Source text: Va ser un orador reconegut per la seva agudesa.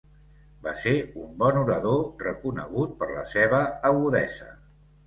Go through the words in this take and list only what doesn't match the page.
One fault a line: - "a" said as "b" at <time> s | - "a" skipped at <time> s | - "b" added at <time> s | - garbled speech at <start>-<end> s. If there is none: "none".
- "bon" added at 1.4 s